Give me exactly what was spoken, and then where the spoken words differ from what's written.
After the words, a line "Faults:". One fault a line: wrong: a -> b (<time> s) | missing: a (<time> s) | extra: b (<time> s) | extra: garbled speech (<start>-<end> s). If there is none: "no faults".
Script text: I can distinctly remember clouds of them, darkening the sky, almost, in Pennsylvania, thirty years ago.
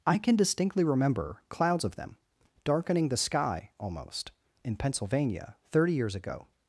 I can distinctly remember clouds of them, darkening the sky, almost, in Pennsylvania, thirty years ago.
Faults:
no faults